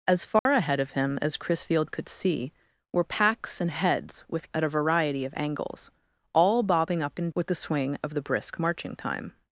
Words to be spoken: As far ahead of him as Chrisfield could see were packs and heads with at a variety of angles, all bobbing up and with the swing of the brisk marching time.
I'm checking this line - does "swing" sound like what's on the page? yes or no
yes